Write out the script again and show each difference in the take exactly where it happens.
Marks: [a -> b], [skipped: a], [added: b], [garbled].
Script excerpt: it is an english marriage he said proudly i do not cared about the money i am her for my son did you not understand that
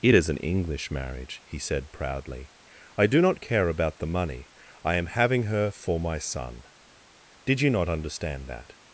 it is an english marriage he said proudly i do not [cared -> care] about the money i am [added: having] her for my son did you not understand that